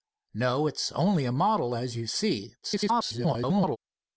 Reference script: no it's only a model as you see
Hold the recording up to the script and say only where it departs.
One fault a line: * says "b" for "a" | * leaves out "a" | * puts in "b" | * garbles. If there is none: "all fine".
* garbles